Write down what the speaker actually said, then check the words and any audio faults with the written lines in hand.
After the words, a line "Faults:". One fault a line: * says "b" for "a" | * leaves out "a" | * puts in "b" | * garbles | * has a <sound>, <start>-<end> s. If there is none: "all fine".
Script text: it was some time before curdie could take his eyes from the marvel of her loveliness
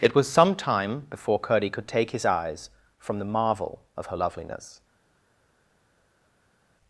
it was some time before curdie could take his eyes from the marvel of her loveliness
Faults:
all fine